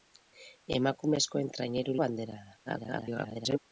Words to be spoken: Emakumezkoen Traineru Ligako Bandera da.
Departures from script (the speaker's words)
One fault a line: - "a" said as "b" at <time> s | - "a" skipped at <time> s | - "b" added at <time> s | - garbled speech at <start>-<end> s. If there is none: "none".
- "Ligako" skipped at 1.9 s
- garbled speech at 2.7-3.6 s